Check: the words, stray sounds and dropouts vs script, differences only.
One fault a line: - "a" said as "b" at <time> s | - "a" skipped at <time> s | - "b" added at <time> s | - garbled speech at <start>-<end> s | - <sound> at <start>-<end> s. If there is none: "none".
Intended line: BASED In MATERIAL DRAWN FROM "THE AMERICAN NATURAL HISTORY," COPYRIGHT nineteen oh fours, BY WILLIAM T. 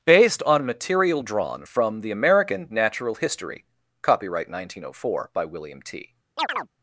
- "In" said as "ON" at 0.4 s
- "fours" said as "four" at 4.9 s
- chirp at 6.4-6.7 s